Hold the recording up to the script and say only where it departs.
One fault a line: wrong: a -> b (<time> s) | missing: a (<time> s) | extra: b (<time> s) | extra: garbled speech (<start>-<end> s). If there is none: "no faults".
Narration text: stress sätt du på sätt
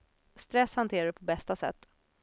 wrong: sätt -> hanterar (0.8 s)
extra: bästa (1.2 s)